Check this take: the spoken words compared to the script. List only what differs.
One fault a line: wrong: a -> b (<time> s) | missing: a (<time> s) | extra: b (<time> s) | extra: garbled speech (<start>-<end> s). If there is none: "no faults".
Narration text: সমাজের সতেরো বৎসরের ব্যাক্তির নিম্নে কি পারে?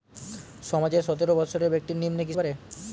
no faults